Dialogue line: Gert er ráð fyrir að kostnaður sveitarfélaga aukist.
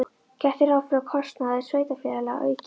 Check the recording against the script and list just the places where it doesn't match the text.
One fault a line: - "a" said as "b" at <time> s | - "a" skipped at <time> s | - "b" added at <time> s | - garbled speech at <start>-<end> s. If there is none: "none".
none